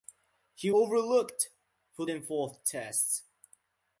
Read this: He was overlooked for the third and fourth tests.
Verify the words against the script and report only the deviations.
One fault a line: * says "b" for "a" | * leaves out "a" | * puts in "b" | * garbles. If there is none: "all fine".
* leaves out "was"
* leaves out "the third"